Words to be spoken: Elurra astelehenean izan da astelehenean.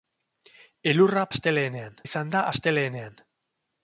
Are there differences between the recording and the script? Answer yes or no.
no